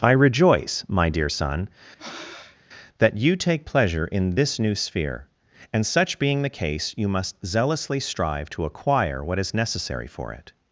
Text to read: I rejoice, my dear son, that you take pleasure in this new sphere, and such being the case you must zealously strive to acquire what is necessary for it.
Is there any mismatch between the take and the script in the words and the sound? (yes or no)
yes